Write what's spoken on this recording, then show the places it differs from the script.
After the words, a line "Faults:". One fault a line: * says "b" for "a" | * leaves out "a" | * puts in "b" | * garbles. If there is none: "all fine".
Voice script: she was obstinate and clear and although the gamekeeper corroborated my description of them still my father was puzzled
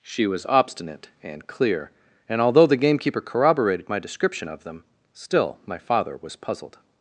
she was obstinate and clear and although the gamekeeper corroborated my description of them still my father was puzzled
Faults:
all fine